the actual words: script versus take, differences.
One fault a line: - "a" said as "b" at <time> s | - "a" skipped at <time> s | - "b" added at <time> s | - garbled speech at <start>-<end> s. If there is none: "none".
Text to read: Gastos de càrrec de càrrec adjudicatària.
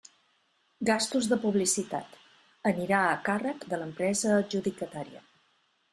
- "publicitat anirà a" added at 1.4 s
- "càrrec" said as "l'empresa" at 3.8 s